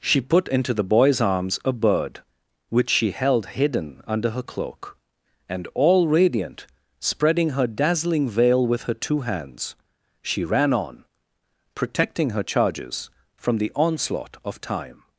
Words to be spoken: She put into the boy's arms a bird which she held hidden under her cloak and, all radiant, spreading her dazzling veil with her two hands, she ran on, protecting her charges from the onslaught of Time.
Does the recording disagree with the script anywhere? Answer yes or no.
no